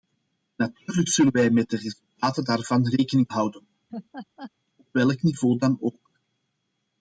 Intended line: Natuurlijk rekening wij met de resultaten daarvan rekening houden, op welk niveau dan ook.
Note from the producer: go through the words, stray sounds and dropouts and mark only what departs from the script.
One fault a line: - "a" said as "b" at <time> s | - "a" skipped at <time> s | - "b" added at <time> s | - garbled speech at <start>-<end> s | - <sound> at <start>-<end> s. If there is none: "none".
- "rekening" said as "zullen" at 1.1 s
- laugh at 3.9-4.5 s